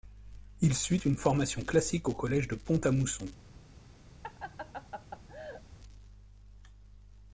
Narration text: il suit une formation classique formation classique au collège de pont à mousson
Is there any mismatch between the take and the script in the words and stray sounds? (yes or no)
yes